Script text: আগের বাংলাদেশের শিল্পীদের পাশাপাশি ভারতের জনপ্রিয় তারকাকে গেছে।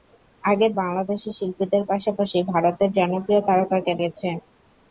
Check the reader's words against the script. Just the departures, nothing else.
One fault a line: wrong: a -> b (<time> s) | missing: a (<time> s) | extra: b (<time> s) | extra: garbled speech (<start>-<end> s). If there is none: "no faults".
no faults